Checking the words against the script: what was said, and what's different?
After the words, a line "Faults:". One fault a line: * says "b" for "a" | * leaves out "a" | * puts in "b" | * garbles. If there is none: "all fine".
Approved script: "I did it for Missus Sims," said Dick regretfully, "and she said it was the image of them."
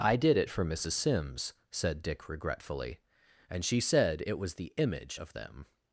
"I did it for Missus Sims," said Dick regretfully, "and she said it was the image of them."
Faults:
all fine